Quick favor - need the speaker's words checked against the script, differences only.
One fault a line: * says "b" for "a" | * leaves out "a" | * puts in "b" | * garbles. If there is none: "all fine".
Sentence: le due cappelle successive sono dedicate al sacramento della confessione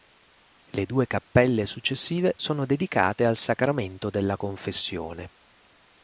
all fine